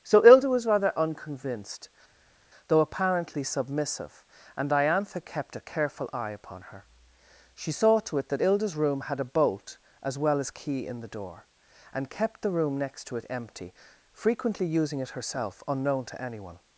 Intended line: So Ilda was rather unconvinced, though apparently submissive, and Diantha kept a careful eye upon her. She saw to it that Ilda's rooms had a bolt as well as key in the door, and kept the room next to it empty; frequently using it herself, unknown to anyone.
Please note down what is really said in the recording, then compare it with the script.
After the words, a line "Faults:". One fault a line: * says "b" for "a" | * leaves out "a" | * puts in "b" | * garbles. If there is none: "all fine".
So Ilda was rather unconvinced, though apparently submissive, and Diantha kept a careful eye upon her. She saw to it that Ilda's room had a bolt as well as key in the door, and kept the room next to it empty; frequently using it herself, unknown to anyone.
Faults:
* says "room" for "rooms"